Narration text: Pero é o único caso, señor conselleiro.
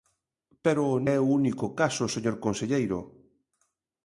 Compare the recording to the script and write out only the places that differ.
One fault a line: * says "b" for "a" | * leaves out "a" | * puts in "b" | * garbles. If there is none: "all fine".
all fine